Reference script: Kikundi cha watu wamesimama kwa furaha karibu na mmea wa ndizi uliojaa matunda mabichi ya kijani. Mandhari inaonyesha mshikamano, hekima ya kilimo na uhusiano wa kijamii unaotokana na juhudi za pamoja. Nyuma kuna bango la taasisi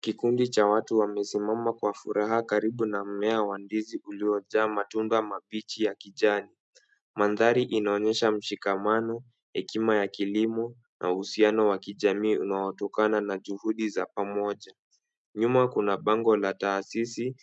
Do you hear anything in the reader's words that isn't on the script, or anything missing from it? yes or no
no